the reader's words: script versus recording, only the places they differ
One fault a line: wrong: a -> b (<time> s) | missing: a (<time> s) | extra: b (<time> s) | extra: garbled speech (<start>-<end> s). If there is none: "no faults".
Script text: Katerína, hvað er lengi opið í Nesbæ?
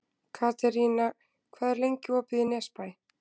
no faults